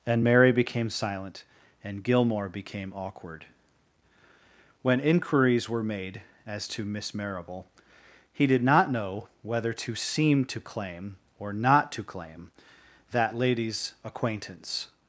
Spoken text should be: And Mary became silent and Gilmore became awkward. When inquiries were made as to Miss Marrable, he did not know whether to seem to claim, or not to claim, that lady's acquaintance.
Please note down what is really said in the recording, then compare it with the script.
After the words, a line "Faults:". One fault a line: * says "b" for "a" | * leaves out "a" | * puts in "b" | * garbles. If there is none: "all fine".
And Mary became silent and Gilmore became awkward. When inquiries were made as to Miss Marrable, he did not know whether to seem to claim, or not to claim, that lady's acquaintance.
Faults:
all fine